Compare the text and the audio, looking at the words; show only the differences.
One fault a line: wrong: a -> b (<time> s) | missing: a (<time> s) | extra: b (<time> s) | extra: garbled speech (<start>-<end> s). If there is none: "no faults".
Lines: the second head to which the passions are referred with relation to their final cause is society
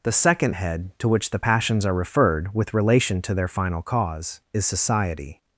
no faults